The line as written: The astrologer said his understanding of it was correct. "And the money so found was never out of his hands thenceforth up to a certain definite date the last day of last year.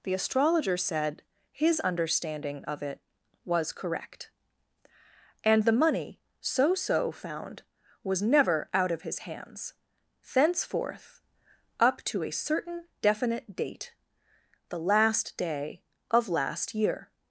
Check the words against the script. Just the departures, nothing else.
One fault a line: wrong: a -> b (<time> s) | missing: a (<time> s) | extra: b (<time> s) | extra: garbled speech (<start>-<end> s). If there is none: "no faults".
extra: so (6.7 s)